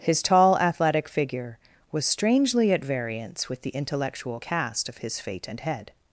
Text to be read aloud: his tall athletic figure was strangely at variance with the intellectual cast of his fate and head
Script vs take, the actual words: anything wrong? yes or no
no